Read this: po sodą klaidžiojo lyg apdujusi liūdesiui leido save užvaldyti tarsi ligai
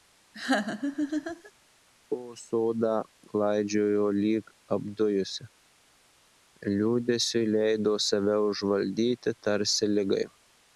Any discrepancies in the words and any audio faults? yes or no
yes